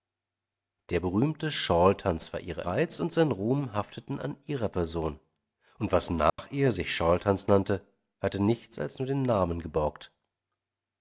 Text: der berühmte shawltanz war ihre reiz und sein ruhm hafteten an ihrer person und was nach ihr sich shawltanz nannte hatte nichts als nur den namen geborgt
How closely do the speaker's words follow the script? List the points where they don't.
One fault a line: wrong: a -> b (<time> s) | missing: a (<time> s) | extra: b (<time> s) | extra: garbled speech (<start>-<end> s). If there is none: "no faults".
no faults